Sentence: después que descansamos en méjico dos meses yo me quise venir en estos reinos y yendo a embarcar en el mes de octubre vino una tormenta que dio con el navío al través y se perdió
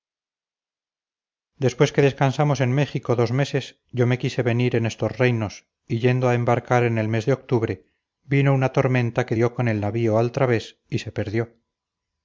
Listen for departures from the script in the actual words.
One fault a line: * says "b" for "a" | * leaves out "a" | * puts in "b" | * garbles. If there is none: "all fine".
all fine